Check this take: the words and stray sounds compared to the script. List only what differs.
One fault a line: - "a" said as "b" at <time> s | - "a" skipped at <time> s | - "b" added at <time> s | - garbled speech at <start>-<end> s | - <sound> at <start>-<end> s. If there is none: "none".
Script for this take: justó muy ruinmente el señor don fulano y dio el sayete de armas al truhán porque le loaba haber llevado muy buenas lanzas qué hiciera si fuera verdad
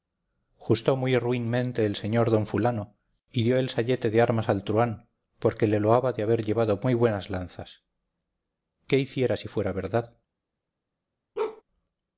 - "de" added at 6.1 s
- bark at 11.4-11.6 s